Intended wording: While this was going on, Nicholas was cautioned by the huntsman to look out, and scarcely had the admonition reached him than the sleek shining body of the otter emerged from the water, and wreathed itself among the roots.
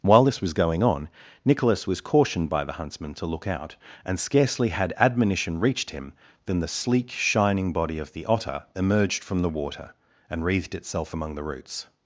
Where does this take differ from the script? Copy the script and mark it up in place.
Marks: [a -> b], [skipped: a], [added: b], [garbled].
While this was going on, Nicholas was cautioned by the huntsman to look out, and scarcely had [skipped: the] admonition reached him than the sleek shining body of the otter emerged from the water, and wreathed itself among the roots.